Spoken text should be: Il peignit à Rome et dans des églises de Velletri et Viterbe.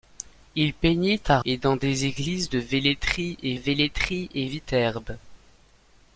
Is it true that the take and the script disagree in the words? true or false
true